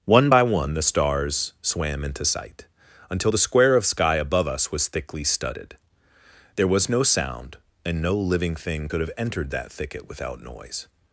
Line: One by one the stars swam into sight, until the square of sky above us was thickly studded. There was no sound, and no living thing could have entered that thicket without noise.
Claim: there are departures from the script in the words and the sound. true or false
false